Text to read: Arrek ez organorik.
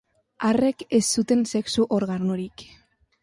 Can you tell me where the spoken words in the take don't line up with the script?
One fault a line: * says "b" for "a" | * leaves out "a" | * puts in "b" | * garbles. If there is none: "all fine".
* puts in "zuten sexu"